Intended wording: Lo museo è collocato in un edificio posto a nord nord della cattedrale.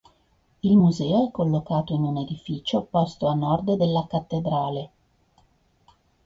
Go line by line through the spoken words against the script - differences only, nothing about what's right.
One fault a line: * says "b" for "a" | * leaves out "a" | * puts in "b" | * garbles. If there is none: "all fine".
* says "Il" for "Lo"
* leaves out "nord"